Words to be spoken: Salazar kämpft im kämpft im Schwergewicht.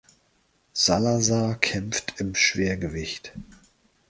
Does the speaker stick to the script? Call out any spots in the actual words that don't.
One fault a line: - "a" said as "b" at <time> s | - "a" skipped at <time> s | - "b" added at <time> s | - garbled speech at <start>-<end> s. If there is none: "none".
- "kämpft im" skipped at 2.3 s